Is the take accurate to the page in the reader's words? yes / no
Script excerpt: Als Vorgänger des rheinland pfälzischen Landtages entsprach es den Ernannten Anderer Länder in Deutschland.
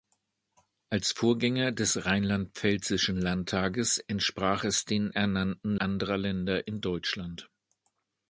yes